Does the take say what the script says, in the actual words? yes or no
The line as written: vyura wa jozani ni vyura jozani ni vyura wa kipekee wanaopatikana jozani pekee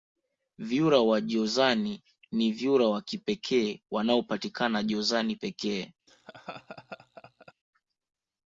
no